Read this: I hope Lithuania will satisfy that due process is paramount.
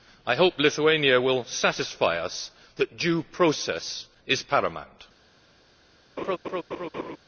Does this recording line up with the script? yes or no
no